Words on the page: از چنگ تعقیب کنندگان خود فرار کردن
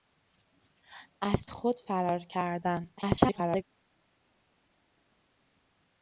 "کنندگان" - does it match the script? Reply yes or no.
no